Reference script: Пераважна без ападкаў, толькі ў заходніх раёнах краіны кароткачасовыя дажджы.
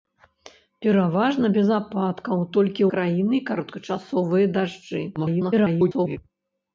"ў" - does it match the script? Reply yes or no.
no